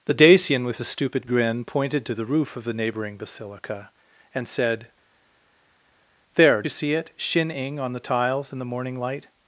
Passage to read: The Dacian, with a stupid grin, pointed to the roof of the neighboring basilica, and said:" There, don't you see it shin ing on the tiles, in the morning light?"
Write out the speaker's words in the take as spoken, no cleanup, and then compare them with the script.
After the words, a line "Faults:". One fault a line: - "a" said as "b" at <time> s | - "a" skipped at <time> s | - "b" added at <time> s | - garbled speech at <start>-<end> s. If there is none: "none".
The Dacian, with a stupid grin, pointed to the roof of the neighboring basilica, and said:" There, you see it shin ing on the tiles, in the morning light?"
Faults:
- "don't" skipped at 6.6 s